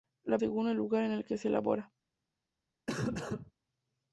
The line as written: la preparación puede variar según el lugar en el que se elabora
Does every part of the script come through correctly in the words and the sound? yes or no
no